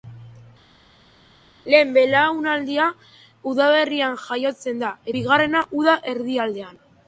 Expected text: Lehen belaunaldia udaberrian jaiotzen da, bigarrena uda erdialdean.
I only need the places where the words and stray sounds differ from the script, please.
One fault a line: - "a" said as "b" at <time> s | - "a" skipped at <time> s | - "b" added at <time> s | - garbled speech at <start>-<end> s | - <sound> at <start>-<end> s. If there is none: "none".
none